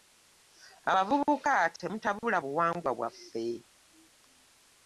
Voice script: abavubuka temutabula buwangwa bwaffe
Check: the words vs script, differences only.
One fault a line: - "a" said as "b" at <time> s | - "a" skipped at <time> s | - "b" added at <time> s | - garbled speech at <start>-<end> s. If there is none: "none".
none